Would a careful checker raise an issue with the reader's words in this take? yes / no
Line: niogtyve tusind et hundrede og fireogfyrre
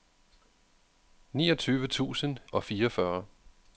yes